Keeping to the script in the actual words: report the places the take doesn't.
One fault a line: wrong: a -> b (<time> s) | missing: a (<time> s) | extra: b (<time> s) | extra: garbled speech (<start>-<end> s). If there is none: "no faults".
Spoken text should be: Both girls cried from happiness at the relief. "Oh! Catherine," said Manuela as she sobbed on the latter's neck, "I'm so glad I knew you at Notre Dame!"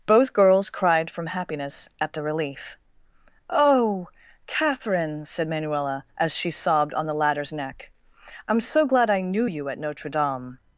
no faults